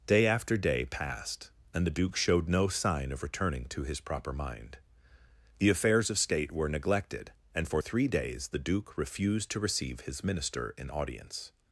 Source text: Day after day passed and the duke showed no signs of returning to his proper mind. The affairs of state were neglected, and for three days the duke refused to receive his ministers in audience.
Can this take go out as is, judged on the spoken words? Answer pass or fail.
fail